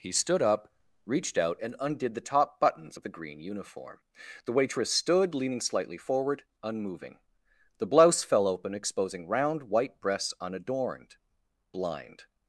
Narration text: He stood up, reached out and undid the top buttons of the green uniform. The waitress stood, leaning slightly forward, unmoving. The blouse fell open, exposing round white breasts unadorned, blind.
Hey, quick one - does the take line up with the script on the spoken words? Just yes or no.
yes